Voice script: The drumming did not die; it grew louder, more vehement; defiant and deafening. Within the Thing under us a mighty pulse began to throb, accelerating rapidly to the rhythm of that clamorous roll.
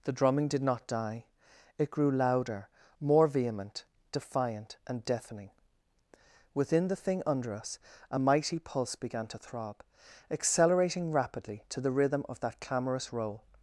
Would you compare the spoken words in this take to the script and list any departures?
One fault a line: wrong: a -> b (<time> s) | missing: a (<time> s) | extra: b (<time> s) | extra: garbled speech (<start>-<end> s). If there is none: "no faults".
no faults